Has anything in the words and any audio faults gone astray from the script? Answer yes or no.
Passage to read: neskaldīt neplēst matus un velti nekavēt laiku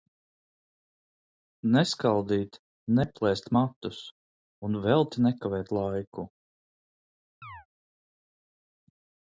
yes